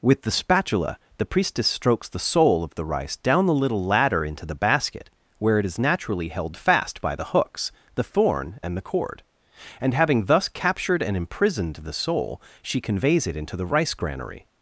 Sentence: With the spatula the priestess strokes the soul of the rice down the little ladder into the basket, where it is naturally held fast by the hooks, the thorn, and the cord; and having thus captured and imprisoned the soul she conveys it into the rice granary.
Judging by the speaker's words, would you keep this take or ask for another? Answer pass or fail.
pass